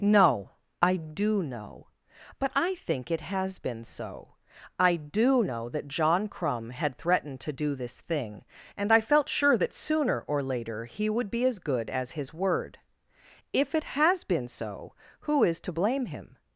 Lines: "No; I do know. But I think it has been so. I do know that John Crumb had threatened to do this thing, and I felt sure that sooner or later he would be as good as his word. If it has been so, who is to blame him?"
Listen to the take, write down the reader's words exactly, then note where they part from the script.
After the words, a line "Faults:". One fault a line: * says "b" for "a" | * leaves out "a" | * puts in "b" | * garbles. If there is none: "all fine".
"No; I do know. But I think it has been so. I do know that John Crumb had threatened to do this thing, and I felt sure that sooner or later he would be as good as his word. If it has been so, who is to blame him?"
Faults:
all fine